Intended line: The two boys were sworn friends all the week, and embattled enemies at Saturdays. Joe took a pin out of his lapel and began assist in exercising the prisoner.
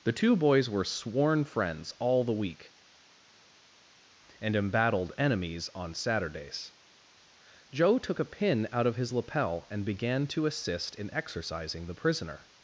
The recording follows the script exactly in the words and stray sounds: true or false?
false